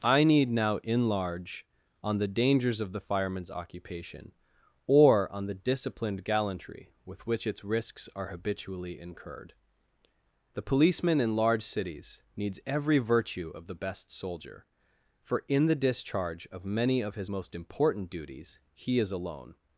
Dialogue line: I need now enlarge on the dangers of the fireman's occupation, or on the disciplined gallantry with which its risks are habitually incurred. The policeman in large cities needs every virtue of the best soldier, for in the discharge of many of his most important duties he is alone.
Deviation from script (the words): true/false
false